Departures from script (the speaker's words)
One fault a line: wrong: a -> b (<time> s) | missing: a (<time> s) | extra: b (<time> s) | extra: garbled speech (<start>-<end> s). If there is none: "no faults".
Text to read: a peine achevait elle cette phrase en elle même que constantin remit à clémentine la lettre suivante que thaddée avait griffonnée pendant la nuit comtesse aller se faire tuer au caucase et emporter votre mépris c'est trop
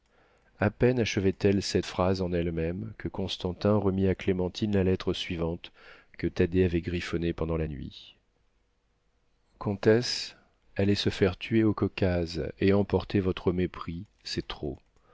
no faults